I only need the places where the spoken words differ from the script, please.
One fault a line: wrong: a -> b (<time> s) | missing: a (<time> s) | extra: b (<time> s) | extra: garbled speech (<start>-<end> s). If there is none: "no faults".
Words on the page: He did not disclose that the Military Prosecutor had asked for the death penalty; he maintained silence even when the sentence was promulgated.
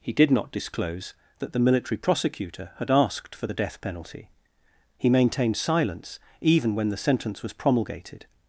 no faults